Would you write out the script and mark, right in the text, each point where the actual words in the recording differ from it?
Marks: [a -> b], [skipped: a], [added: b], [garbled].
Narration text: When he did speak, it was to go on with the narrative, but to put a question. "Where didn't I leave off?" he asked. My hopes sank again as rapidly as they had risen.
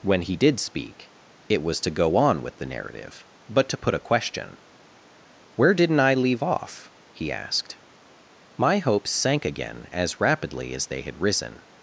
When he did speak, it was to go on with the narrative, but to put a question. "Where didn't I leave off?" he asked. My hopes sank again as rapidly as they had risen.